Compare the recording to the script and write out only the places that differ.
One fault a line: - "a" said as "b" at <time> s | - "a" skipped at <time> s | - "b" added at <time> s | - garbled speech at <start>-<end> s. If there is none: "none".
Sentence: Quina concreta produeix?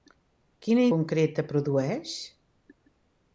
none